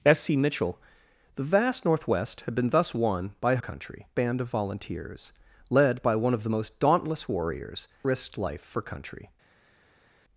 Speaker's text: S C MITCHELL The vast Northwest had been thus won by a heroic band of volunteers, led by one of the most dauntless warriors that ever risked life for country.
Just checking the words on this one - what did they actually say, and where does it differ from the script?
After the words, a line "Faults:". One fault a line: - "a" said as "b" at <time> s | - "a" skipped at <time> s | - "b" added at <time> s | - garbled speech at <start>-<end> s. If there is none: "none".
S C MITCHELL The vast Northwest had been thus won by a country band of volunteers, led by one of the most dauntless warriors risked life for country.
Faults:
- "heroic" said as "country" at 3.6 s
- "that ever" skipped at 7.9 s